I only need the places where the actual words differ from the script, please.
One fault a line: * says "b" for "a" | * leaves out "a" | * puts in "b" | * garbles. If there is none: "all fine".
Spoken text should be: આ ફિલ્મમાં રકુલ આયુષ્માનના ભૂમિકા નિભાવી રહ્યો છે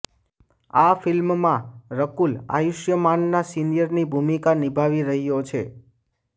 * puts in "સિનિયરની"